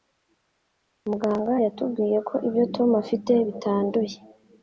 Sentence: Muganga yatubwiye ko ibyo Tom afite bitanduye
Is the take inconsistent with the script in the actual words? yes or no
no